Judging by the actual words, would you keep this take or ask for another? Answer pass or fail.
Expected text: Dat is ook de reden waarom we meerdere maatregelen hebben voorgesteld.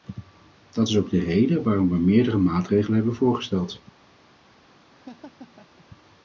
pass